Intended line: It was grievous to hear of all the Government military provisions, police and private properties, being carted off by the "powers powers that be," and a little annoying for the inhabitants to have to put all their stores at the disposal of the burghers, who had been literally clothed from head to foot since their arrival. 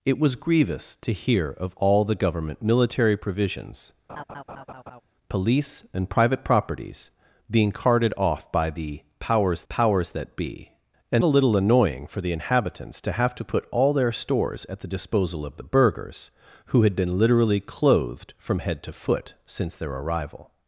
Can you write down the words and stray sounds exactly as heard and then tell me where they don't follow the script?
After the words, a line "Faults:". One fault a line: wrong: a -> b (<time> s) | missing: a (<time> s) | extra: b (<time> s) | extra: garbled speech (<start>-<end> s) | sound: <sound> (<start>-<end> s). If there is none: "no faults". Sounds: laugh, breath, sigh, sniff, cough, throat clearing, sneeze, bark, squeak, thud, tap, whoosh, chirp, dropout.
It was grievous to hear of all the Government military provisions, police and private properties, being carted off by the "powers powers that be," and a little annoying for the inhabitants to have to put all their stores at the disposal of the burghers, who had been literally clothed from head to foot since their arrival.
Faults:
sound: laugh (4.1-5.0 s)